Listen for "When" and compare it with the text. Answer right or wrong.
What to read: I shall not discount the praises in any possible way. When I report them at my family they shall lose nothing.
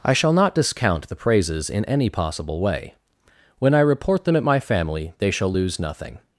right